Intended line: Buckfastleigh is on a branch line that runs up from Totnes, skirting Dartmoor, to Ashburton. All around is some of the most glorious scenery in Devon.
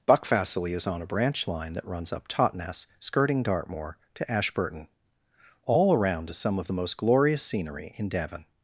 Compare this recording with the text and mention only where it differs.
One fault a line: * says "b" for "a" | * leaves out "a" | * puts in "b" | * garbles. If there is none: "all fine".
* leaves out "from"